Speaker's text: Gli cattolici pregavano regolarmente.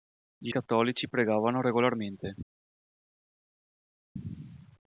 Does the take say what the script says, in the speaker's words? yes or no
yes